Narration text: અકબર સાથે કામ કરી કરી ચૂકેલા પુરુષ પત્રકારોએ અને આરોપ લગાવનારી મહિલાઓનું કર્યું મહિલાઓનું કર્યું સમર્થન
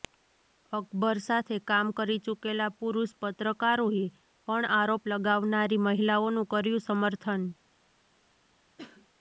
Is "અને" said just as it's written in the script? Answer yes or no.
no